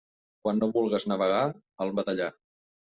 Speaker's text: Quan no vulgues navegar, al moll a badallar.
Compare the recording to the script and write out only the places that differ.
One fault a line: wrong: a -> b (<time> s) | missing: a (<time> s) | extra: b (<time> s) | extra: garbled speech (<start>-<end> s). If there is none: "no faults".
missing: moll (1.9 s)